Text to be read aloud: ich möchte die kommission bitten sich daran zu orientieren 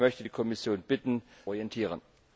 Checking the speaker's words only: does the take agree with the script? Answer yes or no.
no